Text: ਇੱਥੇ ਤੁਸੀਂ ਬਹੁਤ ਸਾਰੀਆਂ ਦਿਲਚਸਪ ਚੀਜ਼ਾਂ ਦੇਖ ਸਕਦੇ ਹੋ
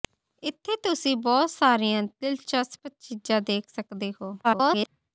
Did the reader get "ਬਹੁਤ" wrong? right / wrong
right